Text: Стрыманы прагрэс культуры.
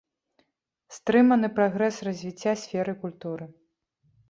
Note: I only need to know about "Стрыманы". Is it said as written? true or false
true